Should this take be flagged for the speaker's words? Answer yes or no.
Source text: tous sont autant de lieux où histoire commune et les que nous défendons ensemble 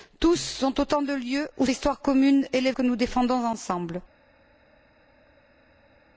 no